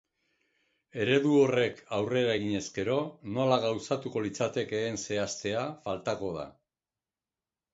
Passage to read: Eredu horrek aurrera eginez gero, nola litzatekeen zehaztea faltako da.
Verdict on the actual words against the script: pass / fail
fail